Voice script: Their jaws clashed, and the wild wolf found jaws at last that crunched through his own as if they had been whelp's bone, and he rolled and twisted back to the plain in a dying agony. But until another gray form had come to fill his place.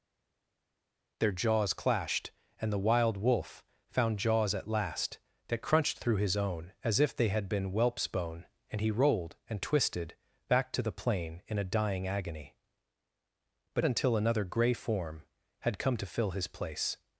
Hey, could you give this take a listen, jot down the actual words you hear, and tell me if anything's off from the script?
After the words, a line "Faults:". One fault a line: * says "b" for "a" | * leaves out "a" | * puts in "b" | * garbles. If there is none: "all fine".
Their jaws clashed, and the wild wolf found jaws at last that crunched through his own as if they had been whelp's bone, and he rolled and twisted back to the plain in a dying agony. But until another gray form had come to fill his place.
Faults:
all fine